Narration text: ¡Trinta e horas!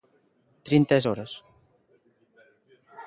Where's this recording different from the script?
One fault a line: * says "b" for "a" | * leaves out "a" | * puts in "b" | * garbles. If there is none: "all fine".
all fine